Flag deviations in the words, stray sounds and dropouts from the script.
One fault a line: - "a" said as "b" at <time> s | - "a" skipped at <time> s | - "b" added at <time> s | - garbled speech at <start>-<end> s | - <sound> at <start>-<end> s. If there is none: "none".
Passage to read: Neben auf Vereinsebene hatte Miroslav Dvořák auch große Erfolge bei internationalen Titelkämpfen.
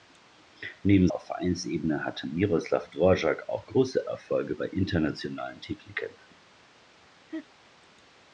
- laugh at 7.3-7.5 s